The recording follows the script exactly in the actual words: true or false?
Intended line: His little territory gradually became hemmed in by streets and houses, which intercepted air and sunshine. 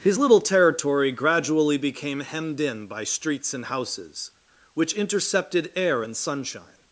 true